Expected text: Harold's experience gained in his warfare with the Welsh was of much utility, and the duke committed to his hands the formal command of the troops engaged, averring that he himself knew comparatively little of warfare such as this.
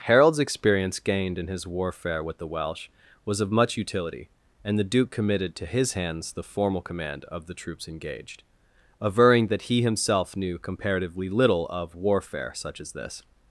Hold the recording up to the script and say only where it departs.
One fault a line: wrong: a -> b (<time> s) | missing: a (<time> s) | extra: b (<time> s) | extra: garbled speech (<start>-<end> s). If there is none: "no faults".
no faults